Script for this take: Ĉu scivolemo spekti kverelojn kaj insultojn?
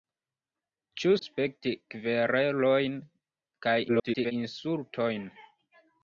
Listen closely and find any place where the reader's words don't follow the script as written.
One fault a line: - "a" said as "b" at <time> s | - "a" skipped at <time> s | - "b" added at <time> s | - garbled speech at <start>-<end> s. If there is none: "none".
- "scivolemo" skipped at 1.1 s
- garbled speech at 3.9-4.3 s